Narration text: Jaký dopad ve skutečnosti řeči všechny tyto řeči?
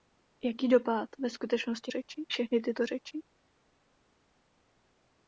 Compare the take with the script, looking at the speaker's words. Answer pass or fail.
pass